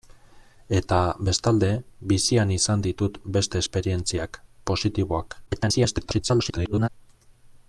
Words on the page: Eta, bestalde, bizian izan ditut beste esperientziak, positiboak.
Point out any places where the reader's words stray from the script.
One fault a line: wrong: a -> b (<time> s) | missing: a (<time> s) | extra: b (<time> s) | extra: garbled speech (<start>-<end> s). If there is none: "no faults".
extra: garbled speech (5.5-6.9 s)